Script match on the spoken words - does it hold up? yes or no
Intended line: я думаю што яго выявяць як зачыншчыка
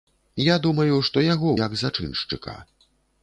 no